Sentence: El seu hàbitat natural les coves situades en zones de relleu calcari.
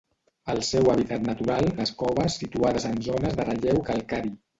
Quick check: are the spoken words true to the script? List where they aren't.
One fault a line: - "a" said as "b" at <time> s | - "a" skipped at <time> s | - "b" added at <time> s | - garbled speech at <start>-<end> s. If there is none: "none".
none